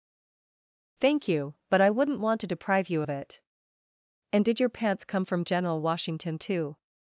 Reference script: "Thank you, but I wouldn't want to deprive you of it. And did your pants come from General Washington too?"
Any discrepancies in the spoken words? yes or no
no